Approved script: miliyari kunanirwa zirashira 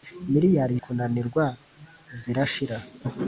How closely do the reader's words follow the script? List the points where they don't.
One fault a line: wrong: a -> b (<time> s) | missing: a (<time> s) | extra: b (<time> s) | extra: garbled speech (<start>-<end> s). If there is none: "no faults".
no faults